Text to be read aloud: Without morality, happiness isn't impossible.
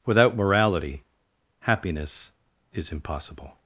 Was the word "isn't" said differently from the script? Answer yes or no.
yes